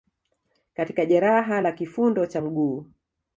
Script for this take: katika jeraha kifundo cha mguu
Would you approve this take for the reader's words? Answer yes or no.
no